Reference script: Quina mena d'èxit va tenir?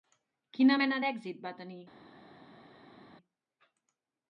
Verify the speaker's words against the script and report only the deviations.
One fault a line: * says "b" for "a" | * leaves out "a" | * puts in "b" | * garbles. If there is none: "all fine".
all fine